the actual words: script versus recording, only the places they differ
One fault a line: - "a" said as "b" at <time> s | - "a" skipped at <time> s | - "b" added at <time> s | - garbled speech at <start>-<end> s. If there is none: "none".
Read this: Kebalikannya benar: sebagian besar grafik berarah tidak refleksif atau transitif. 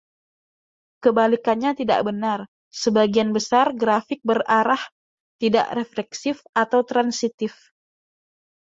- "tidak" added at 1.8 s